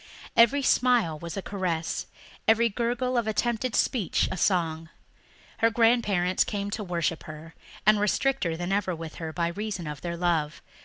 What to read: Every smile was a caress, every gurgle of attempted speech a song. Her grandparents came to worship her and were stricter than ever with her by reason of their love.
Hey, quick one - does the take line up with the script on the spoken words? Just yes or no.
yes